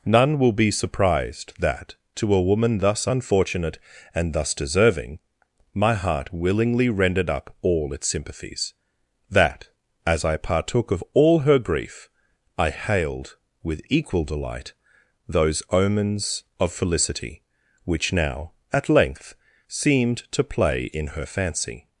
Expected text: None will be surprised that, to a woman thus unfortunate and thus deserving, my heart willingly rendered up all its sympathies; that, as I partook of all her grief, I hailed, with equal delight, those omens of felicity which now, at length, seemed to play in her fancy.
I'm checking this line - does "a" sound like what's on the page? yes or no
yes